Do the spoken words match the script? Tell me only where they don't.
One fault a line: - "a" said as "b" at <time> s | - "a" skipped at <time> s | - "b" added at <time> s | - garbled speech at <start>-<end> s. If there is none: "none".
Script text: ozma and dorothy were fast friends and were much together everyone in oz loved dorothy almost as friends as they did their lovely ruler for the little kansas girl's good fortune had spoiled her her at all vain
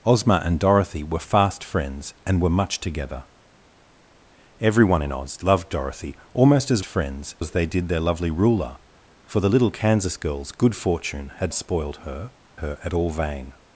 none